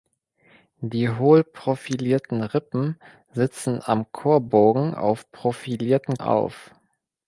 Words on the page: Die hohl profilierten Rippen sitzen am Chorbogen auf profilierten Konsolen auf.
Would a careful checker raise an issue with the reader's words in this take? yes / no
yes